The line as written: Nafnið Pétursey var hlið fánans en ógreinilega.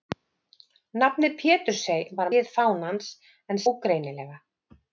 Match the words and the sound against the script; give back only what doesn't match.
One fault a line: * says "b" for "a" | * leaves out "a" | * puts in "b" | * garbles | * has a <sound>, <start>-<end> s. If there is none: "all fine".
all fine